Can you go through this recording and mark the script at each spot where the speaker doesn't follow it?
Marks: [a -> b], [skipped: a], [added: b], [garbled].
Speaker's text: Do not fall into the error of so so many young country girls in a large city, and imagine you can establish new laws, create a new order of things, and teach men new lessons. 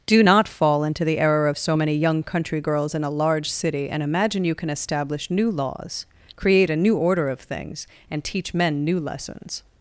Do not fall into the error of so [skipped: so] many young country girls in a large city, and imagine you can establish new laws, create a new order of things, and teach men new lessons.